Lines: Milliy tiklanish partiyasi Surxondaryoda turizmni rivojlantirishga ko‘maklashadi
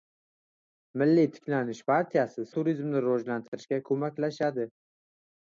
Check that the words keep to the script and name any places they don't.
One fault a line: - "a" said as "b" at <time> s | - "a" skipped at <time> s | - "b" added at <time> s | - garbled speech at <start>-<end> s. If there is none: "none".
- "Surxondaryoda" skipped at 2.5 s